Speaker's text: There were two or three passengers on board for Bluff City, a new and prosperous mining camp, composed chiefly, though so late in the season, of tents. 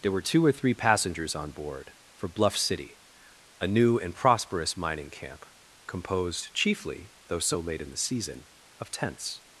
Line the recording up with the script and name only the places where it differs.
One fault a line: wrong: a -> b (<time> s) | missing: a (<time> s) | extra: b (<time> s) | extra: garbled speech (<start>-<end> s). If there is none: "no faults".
no faults